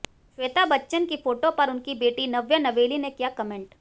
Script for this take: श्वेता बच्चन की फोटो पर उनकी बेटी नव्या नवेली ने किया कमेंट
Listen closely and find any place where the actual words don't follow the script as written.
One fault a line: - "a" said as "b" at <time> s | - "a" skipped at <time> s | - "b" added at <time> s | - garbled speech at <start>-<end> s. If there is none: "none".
none